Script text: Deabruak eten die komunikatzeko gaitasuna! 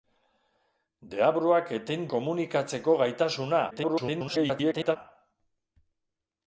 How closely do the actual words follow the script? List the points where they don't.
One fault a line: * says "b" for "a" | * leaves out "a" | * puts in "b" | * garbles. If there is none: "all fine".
* leaves out "die"
* garbles